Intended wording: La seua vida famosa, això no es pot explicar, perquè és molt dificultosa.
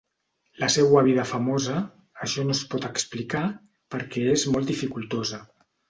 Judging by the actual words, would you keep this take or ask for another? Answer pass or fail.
pass